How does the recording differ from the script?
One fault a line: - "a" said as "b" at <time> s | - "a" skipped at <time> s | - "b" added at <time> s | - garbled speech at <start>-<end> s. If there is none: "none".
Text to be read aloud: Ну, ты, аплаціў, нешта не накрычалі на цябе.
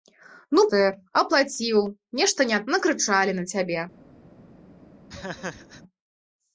none